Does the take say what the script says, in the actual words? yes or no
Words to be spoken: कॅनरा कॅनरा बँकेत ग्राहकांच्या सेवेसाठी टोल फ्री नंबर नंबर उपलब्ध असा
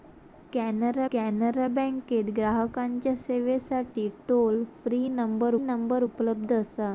yes